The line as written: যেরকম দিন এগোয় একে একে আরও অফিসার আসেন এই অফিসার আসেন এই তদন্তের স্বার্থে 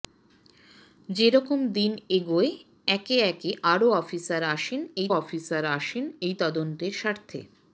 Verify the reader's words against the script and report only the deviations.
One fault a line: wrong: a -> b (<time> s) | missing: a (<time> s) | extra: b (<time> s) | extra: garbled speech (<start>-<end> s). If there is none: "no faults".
no faults